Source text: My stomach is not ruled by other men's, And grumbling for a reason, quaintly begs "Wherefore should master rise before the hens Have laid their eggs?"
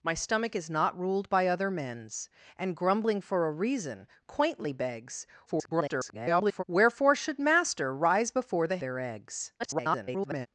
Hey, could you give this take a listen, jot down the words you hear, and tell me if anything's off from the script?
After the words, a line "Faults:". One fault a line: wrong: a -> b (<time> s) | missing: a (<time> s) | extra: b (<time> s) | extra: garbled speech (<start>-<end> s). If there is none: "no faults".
My stomach is not ruled by other men's, And grumbling for a reason, quaintly begs [garbled] "Wherefore should master rise before the their eggs?" [garbled]
Faults:
extra: garbled speech (5.5-6.6 s)
missing: hens Have laid (8.8 s)
extra: garbled speech (9.6-10.5 s)